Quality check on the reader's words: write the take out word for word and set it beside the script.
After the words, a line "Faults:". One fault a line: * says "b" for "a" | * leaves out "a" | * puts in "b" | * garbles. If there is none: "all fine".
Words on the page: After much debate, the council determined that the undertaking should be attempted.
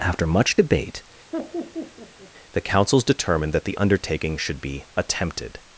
After much debate, the councils determined that the undertaking should be attempted.
Faults:
* says "councils" for "council"